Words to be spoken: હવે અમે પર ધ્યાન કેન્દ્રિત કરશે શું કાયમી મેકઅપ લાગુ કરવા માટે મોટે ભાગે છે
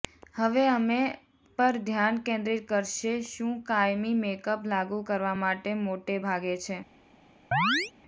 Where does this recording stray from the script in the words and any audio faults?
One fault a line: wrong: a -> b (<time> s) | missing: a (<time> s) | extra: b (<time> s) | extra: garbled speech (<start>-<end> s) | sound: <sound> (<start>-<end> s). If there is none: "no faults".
sound: chirp (7.5-7.9 s)